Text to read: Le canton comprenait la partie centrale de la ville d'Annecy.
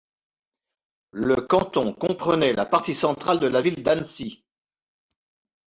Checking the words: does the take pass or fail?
pass